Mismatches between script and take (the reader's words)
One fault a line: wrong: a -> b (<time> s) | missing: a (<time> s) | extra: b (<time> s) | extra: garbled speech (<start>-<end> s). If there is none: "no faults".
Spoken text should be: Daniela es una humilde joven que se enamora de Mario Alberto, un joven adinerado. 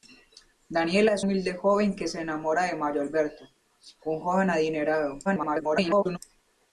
missing: una (1.2 s)
extra: garbled speech (5.2-6.2 s)